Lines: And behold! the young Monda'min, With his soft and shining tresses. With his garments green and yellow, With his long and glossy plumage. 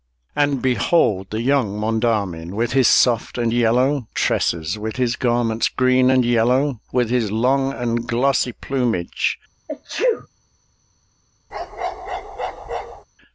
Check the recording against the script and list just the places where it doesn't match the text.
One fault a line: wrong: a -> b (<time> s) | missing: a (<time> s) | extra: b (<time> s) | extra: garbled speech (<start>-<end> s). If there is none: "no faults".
wrong: shining -> yellow (3.5 s)